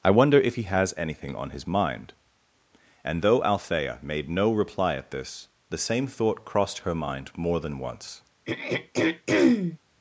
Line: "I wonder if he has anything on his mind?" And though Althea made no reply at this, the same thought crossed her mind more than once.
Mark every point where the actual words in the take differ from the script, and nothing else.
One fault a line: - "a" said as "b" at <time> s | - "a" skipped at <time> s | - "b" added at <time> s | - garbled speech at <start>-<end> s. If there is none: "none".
none